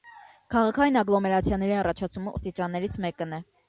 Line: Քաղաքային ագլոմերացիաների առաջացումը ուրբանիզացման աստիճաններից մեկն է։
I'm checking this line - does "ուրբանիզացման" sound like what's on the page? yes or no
no